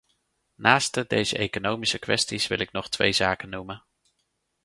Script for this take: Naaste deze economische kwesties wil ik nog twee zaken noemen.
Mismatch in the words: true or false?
false